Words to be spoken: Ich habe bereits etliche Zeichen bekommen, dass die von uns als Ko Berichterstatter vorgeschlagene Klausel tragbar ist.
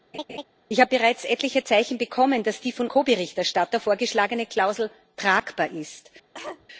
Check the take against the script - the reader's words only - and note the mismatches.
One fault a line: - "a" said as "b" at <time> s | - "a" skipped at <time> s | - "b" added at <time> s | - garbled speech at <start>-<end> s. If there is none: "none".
- "uns als" skipped at 2.9 s